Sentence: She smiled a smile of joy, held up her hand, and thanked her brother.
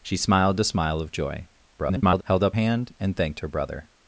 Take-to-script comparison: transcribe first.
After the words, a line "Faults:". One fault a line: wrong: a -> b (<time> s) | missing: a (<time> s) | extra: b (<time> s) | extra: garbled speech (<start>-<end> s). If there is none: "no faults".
She smiled a smile of joy, [garbled] held up hand, and thanked her brother.
Faults:
extra: garbled speech (1.8-2.2 s)
missing: her (2.6 s)